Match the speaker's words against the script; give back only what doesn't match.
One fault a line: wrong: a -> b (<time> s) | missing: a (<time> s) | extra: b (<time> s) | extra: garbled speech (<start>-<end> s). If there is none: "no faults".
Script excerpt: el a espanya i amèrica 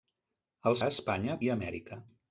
no faults